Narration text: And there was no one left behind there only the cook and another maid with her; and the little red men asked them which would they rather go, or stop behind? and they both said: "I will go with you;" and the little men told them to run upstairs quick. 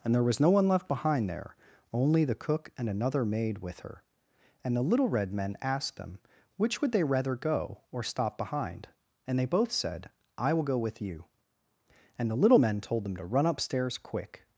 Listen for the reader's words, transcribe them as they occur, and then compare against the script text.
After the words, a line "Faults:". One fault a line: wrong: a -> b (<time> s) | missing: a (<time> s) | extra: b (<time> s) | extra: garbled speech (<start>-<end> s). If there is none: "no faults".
And there was no one left behind there only the cook and another maid with her; and the little red men asked them which would they rather go, or stop behind? and they both said: "I will go with you;" and the little men told them to run upstairs quick.
Faults:
no faults